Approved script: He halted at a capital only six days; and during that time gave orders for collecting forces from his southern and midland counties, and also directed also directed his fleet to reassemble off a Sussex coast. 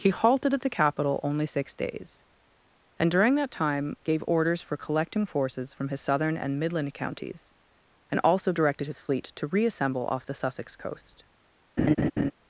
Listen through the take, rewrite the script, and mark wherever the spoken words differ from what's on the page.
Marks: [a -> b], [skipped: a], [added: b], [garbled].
He halted at [a -> the] capital only six days; and during that time gave orders for collecting forces from his southern and midland counties, and also directed [skipped: also directed] his fleet to reassemble off [a -> the] Sussex coast.